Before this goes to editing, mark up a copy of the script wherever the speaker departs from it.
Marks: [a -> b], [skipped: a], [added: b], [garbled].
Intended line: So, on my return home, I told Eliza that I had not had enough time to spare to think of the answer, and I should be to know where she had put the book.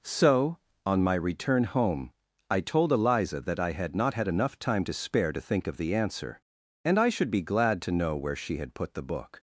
So, on my return home, I told Eliza that I had not had enough time to spare to think of the answer, and I should be [added: glad] to know where she had put the book.